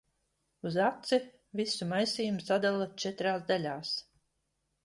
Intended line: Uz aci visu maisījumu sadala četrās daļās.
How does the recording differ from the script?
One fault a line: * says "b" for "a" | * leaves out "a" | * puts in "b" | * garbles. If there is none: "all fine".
all fine